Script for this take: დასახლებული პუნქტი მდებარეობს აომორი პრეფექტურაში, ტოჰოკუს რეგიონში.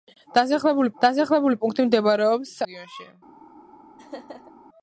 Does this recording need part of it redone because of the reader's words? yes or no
yes